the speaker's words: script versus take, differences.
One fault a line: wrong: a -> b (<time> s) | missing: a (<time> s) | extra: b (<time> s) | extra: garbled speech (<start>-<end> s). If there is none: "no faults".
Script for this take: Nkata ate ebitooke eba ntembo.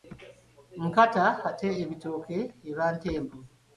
no faults